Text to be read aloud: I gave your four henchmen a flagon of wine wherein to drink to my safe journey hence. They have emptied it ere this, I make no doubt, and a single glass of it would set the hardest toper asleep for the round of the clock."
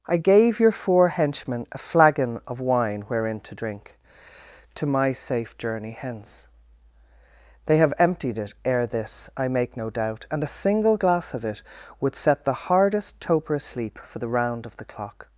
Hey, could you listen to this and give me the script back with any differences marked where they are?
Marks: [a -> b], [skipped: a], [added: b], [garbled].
I gave your four henchmen a flagon of wine wherein to drink to my safe journey hence. They have emptied it ere this, I make no doubt, and a single glass of it would set the hardest toper asleep for the round of the clock."